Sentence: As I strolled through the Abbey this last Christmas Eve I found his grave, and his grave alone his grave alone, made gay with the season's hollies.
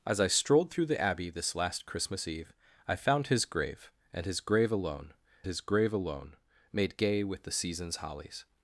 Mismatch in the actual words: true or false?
false